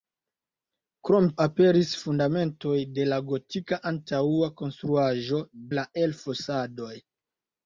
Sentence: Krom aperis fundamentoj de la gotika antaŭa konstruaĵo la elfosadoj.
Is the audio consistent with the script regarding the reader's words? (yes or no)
yes